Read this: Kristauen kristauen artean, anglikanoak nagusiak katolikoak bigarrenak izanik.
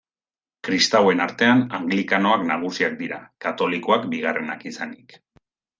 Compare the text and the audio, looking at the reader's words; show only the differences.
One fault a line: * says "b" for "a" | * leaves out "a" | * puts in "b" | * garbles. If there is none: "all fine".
* leaves out "kristauen"
* puts in "dira"